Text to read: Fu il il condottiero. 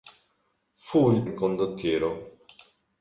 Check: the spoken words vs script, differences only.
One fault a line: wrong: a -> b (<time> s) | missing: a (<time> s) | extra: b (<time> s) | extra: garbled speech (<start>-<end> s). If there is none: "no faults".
no faults